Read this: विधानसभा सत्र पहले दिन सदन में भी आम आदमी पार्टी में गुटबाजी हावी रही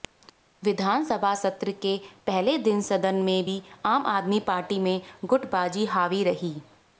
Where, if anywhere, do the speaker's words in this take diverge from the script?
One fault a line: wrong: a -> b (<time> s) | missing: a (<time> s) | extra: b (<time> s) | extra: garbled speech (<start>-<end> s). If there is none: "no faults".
extra: के (1.8 s)